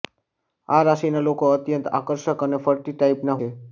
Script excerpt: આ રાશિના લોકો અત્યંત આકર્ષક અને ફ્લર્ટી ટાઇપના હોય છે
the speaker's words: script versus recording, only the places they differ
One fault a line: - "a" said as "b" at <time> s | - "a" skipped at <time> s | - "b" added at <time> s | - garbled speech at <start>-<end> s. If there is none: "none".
- "હોય" skipped at 3.4 s